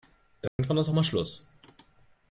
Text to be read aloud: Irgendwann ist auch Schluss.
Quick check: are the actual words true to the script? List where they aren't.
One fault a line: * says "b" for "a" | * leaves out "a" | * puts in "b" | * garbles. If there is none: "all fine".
* puts in "mal"